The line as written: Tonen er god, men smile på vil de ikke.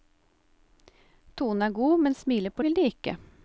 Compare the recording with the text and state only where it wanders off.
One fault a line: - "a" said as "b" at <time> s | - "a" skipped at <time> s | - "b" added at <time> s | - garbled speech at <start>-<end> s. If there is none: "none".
none